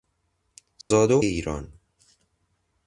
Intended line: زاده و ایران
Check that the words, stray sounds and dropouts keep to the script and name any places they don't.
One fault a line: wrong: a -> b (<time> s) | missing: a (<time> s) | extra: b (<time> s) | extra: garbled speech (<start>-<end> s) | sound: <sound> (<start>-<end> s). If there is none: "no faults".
sound: dropout (0.8-0.9 s)